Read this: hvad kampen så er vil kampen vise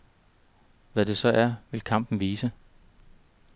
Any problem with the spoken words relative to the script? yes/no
yes